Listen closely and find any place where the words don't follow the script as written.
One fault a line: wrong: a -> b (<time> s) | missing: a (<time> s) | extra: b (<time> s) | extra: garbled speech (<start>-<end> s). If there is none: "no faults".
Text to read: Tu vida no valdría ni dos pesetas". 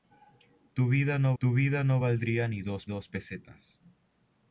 extra: tu vida no (1.4 s)
extra: dos (2.9 s)